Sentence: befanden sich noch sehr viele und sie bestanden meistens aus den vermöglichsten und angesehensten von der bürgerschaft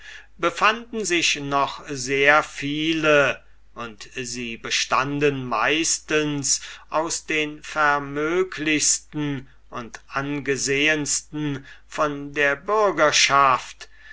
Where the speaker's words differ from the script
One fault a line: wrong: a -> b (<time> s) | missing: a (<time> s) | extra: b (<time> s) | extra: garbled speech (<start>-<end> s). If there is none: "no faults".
no faults